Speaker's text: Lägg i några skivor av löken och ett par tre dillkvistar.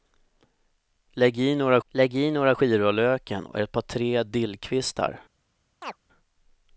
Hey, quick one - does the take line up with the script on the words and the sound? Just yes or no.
no